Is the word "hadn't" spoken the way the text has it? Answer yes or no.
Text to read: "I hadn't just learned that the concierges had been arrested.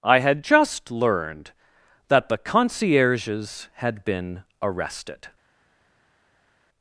no